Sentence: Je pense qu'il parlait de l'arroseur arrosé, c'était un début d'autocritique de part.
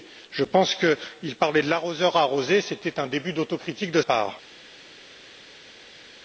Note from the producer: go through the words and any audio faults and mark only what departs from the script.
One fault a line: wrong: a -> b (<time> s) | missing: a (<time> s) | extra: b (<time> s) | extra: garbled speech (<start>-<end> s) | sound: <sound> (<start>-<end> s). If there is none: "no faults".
no faults